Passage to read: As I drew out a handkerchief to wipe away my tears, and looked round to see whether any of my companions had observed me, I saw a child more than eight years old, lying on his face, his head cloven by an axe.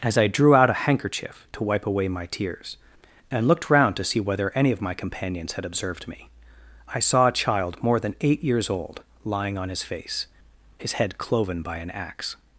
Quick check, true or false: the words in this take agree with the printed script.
true